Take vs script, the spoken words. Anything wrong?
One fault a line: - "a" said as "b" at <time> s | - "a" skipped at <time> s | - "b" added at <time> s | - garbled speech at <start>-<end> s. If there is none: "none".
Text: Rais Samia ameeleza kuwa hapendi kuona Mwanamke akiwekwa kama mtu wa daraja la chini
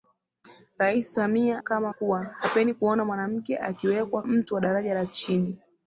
- "ameeleza" said as "kama" at 1.6 s
- "kama" skipped at 4.2 s